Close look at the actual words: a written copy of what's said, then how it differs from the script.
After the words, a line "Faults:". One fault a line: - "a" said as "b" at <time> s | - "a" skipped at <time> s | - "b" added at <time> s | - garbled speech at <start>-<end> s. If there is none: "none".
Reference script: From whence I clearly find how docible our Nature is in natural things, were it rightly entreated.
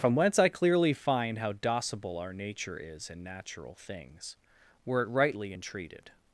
From whence I clearly find how docible our Nature is in natural things, were it rightly entreated.
Faults:
none